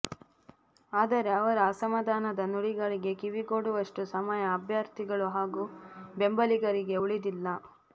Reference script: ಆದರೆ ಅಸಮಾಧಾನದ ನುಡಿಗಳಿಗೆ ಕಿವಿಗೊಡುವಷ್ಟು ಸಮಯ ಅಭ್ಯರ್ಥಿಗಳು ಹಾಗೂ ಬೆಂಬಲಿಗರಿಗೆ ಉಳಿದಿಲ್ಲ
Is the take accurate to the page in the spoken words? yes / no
no